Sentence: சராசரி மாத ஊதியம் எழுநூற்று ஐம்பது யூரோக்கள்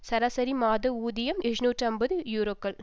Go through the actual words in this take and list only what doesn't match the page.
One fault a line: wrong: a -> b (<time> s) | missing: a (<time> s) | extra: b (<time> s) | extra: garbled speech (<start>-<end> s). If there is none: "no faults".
no faults